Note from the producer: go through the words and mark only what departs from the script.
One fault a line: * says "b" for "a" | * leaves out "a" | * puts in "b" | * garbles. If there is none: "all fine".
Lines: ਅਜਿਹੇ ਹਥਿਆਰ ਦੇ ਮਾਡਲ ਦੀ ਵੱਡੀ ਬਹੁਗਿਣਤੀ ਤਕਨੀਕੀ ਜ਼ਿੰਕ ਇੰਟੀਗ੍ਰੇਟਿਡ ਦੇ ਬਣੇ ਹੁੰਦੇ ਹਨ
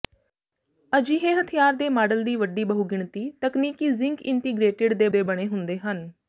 * puts in "ਦੇ"